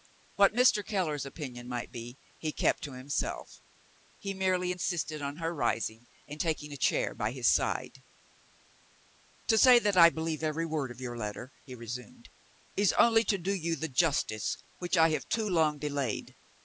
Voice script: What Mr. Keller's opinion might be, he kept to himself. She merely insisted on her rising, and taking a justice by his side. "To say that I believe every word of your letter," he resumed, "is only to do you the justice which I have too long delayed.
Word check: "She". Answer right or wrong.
wrong